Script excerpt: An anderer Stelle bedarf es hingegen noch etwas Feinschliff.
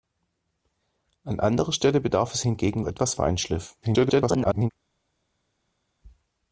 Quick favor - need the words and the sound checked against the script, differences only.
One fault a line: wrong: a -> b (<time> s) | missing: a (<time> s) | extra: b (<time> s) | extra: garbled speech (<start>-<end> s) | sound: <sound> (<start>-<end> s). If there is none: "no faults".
missing: noch (2.8 s)
extra: garbled speech (3.8-4.7 s)